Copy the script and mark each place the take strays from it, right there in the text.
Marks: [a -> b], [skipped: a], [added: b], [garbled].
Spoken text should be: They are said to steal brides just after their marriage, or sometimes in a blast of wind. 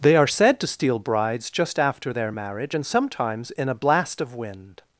They are said to steal brides just after their marriage, [or -> and] sometimes in a blast of wind.